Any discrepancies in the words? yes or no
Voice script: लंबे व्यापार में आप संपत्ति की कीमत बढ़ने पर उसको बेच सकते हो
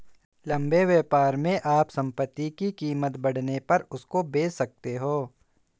no